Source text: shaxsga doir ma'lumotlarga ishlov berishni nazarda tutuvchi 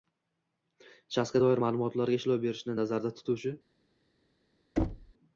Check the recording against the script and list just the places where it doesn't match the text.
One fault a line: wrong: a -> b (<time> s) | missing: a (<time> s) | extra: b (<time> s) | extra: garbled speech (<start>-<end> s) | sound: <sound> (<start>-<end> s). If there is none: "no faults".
sound: thud (4.8-5.1 s)